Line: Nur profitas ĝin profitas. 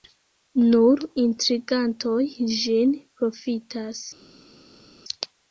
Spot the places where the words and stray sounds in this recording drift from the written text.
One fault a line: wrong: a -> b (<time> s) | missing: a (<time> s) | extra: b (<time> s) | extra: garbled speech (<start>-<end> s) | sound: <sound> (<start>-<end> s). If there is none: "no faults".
wrong: profitas -> intrigantoj (1.2 s)